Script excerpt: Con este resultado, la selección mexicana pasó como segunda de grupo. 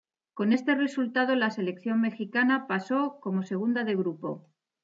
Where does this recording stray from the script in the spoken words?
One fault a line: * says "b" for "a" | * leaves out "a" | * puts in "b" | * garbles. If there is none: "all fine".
all fine